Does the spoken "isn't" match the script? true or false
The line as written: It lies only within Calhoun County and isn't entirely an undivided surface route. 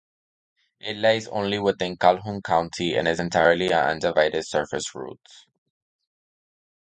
false